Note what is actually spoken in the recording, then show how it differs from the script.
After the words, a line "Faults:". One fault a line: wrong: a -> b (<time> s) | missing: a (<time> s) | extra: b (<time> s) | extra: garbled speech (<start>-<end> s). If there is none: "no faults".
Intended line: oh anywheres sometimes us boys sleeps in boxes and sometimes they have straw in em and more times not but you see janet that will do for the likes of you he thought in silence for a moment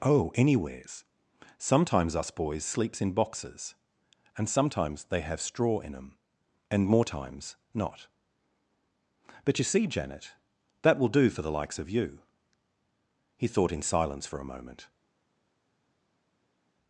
oh anywheres sometimes us boys sleeps in boxes and sometimes they have straw in em and more times not but you see janet that will do for the likes of you he thought in silence for a moment
Faults:
no faults